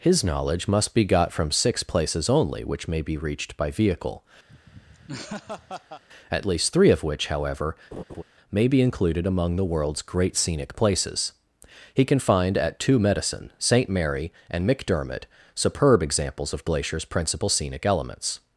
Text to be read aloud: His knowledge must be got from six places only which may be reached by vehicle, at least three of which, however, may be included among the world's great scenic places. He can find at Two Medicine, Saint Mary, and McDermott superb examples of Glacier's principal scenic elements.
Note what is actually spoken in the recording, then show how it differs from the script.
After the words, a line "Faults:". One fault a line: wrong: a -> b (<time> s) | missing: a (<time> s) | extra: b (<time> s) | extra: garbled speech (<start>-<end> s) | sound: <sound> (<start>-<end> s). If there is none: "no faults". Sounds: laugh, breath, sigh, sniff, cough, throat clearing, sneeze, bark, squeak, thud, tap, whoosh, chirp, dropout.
His knowledge must be got from six places only which may be reached by vehicle, at least three of which, however, may be included among the world's great scenic places. He can find at Two Medicine, Saint Mary, and McDermott superb examples of Glacier's principal scenic elements.
Faults:
sound: laugh (4.5-6.0 s)
sound: laugh (7.9-8.2 s)